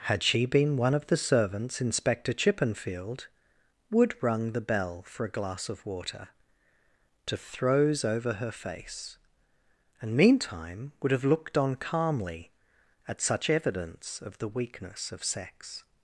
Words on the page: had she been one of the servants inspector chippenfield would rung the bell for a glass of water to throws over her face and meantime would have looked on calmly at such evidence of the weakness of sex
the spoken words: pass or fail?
pass